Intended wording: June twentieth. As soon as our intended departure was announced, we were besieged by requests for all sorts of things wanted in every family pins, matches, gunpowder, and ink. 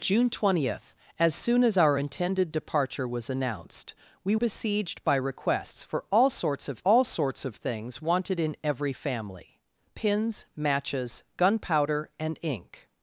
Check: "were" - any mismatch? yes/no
yes